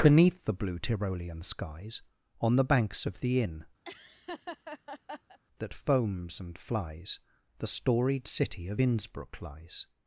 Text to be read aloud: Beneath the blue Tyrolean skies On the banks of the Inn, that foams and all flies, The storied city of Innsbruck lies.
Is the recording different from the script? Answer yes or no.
yes